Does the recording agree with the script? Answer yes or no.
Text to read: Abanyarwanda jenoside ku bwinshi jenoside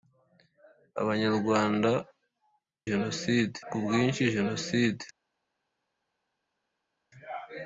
yes